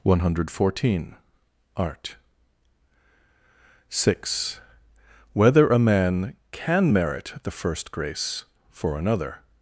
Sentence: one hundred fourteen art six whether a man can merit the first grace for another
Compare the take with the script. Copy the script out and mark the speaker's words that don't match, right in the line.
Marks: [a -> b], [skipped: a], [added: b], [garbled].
one hundred fourteen art six whether a man can merit the first grace for another